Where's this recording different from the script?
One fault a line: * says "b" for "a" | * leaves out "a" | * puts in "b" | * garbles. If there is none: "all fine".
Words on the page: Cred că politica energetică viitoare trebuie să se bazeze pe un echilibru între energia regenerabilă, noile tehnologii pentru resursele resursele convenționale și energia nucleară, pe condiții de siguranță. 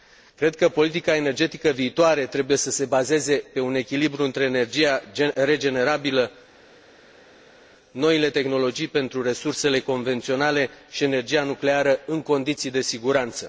* leaves out "resursele"
* says "în" for "pe"